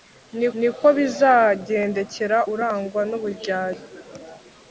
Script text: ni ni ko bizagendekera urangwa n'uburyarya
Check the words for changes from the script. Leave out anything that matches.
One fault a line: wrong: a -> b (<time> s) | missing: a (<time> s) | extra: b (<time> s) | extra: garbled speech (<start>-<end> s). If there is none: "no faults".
no faults